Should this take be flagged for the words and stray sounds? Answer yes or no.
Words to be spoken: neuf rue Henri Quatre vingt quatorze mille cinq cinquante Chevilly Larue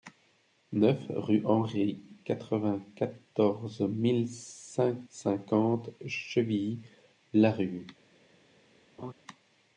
yes